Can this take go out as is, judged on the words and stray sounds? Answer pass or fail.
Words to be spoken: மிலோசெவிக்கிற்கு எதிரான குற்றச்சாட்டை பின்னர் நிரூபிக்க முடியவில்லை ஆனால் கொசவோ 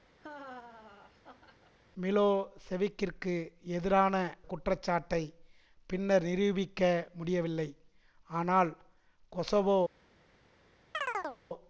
fail